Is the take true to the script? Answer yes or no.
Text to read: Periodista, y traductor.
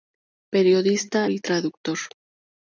yes